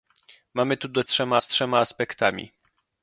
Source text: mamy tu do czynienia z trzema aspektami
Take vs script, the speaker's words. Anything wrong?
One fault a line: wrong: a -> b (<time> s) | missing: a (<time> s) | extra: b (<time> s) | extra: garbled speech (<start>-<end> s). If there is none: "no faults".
wrong: czynienia -> trzema (1.1 s)